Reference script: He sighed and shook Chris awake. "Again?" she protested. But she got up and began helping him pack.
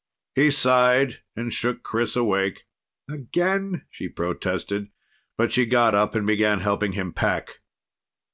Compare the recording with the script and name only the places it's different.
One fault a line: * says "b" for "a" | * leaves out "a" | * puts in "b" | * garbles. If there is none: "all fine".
all fine